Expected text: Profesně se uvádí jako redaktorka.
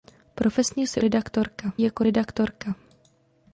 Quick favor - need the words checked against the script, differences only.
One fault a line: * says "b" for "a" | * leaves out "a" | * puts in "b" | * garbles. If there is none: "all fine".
* says "redaktorka" for "uvádí"